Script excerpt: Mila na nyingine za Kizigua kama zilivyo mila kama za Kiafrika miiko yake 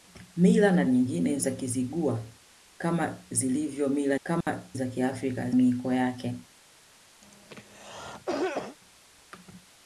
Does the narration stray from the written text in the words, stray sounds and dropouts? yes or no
yes